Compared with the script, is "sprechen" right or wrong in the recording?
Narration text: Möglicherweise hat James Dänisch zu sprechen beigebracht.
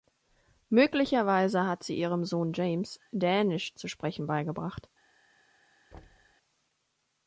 right